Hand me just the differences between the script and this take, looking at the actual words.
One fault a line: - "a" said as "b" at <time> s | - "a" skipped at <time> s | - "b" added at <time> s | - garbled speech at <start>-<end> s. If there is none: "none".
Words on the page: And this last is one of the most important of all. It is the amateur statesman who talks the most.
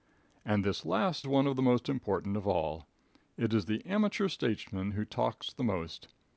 - "is" skipped at 1.3 s